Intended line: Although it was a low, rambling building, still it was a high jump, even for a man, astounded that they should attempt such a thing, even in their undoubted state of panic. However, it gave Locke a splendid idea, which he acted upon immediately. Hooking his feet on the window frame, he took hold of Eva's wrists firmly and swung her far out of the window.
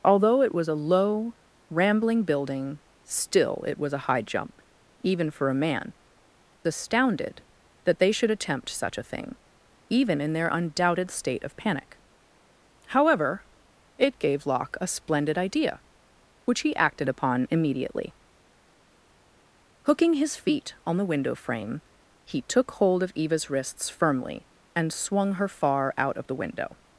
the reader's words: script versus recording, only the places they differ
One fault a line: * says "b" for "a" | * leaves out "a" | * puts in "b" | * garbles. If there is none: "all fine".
all fine